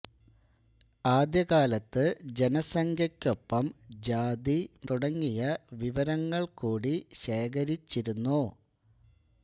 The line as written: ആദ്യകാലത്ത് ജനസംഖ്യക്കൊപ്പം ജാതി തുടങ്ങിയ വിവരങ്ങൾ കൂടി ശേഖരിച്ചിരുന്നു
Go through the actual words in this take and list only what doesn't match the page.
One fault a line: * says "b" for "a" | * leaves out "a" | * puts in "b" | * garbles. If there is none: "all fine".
all fine